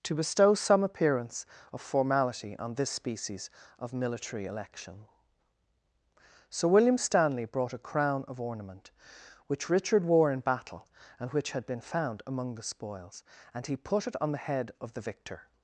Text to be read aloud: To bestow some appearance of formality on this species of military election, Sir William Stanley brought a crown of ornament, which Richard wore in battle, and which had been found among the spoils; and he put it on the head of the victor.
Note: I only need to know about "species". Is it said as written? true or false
true